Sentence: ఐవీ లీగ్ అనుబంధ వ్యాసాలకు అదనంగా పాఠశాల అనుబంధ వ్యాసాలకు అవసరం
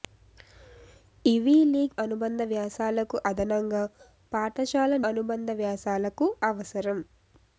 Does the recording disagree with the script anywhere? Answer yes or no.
no